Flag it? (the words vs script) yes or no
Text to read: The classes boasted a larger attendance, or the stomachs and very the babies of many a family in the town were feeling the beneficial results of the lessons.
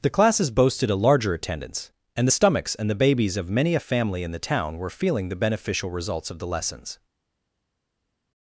yes